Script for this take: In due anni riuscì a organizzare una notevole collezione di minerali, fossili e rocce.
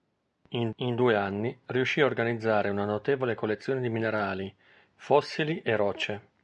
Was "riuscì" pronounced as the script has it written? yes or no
yes